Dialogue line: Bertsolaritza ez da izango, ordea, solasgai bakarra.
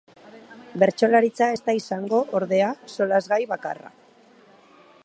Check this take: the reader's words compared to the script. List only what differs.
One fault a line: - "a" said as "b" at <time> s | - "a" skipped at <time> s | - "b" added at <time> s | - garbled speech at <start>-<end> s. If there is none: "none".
none